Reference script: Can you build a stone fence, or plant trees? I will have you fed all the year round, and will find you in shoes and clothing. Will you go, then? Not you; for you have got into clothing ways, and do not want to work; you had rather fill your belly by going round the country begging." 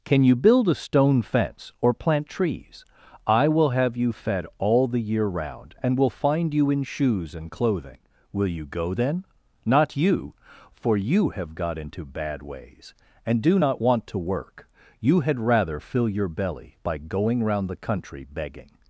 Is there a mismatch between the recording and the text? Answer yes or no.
yes